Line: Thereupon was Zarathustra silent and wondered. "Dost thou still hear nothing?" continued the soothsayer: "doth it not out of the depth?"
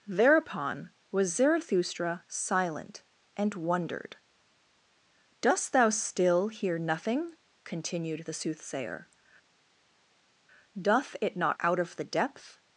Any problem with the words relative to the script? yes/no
no